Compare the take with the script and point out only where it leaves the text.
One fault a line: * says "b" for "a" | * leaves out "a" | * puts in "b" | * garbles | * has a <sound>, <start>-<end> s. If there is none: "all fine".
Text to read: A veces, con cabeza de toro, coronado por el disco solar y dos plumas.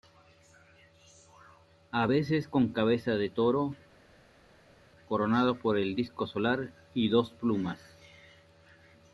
all fine